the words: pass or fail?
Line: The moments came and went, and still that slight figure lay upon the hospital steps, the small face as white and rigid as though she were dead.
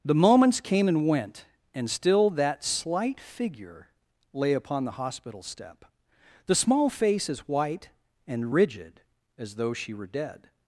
fail